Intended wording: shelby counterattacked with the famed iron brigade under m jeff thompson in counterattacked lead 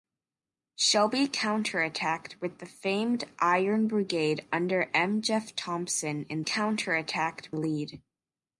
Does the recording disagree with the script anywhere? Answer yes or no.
no